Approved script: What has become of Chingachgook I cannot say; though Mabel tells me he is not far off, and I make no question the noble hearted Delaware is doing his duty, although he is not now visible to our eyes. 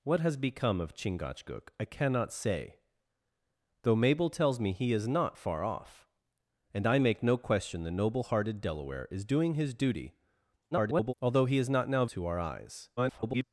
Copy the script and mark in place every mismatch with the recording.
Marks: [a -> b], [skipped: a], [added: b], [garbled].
What has become of Chingachgook I cannot say; though Mabel tells me he is not far off, and I make no question the noble hearted Delaware is doing his duty, [garbled] although he is not now [skipped: visible] to our eyes. [garbled]